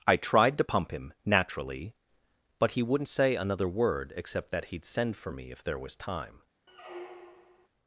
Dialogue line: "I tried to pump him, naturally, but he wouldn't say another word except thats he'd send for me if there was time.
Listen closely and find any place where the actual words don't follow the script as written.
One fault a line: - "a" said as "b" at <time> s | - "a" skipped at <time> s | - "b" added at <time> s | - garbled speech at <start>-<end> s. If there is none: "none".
- "thats" said as "that" at 4.5 s